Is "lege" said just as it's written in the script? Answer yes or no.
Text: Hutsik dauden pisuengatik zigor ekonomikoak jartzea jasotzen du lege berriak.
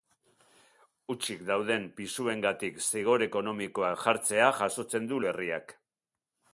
no